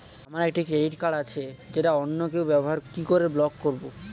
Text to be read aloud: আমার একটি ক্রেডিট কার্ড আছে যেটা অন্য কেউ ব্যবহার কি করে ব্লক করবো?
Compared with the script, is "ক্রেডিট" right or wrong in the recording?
right